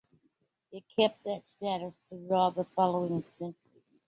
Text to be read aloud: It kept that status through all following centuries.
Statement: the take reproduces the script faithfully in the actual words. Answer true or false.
false